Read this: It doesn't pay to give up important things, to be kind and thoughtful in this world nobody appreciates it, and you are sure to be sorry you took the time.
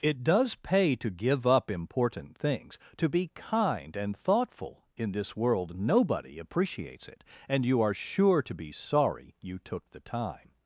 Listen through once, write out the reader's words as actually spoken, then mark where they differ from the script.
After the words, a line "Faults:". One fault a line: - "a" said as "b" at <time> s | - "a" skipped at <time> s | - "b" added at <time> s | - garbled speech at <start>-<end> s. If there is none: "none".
It does pay to give up important things, to be kind and thoughtful in this world nobody appreciates it, and you are sure to be sorry you took the time.
Faults:
- "doesn't" said as "does" at 0.2 s